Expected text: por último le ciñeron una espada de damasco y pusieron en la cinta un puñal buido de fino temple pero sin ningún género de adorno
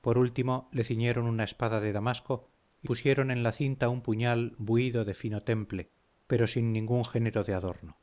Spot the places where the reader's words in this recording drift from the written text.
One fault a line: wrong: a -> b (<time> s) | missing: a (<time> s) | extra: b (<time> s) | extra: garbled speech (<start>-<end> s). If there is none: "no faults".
no faults